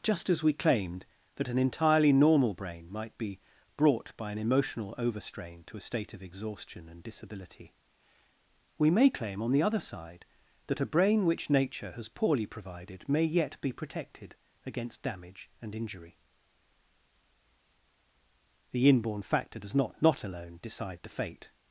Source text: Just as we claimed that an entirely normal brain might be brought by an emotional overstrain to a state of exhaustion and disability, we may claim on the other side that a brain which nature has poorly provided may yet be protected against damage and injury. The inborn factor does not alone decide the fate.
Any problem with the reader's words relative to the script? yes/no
yes